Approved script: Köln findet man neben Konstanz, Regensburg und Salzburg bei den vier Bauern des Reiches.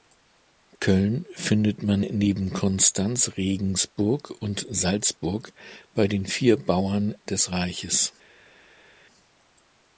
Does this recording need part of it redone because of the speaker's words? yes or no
no